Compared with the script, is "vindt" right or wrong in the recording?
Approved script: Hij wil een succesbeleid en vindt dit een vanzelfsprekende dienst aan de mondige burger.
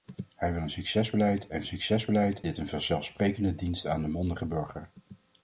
wrong